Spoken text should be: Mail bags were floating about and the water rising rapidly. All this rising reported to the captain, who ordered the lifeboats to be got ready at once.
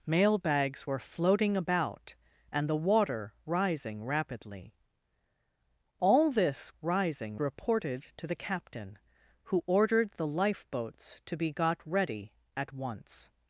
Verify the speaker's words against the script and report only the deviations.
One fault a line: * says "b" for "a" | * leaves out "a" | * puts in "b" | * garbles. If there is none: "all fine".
all fine